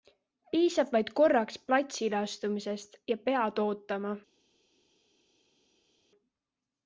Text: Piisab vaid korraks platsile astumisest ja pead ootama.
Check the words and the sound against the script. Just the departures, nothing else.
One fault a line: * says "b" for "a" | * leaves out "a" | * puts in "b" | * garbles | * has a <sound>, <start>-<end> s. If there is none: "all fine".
all fine